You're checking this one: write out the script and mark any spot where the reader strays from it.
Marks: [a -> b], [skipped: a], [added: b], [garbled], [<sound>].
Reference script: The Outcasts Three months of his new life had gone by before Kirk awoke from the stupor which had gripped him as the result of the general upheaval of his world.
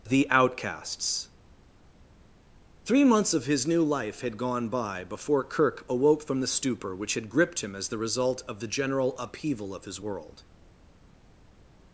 The Outcasts Three months of his new life had gone by before Kirk awoke from the stupor which had gripped him as the result of the general upheaval of his world.